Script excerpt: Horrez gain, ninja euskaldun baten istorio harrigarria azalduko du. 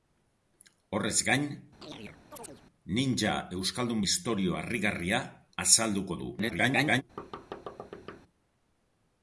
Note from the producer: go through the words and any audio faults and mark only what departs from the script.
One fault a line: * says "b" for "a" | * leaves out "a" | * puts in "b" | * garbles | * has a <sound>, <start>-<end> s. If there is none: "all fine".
* has a chirp, 1.8-2.6 s
* leaves out "baten"
* garbles
* has a thud, 7.2-8.2 s